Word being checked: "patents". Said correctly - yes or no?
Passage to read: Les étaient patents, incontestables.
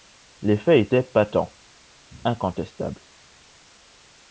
yes